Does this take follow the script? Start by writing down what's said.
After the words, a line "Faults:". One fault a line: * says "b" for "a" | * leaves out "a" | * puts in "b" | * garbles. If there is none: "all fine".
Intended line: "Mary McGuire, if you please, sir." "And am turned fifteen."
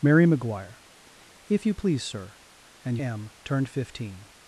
"Mary McGuire, if you please, sir." "And am turned fifteen."
Faults:
all fine